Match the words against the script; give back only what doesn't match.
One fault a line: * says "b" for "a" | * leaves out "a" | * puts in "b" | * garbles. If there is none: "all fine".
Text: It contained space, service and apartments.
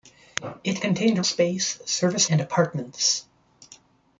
all fine